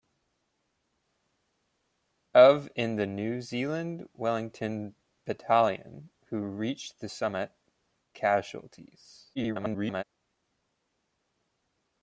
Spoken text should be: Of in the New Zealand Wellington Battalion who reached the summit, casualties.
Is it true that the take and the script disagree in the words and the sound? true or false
true